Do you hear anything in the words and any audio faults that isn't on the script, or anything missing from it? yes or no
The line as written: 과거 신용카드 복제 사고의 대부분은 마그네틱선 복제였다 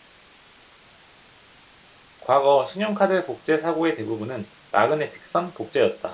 no